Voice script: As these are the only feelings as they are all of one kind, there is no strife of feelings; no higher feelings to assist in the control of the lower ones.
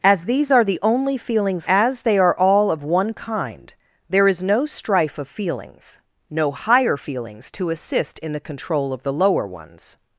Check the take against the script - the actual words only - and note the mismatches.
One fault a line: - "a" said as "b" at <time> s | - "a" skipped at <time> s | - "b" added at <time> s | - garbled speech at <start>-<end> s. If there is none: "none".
none